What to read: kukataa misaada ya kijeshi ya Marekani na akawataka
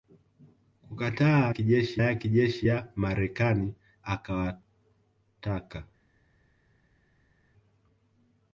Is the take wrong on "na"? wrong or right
wrong